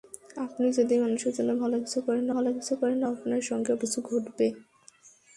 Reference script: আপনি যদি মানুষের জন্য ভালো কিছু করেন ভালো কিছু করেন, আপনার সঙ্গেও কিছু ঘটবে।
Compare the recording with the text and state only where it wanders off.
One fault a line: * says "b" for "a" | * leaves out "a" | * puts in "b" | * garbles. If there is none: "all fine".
all fine